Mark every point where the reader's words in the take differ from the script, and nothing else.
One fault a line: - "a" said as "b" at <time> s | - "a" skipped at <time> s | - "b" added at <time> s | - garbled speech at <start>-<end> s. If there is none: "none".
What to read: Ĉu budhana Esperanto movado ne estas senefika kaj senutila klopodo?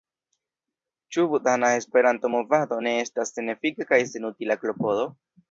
none